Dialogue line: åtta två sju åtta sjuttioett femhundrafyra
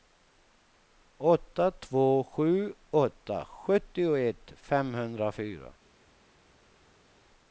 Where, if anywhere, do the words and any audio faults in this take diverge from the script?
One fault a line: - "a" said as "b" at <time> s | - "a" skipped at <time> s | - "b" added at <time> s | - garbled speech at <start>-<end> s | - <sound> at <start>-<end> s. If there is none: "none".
none